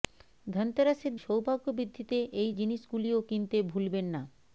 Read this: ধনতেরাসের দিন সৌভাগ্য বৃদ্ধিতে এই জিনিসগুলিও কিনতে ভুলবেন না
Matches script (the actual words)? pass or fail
fail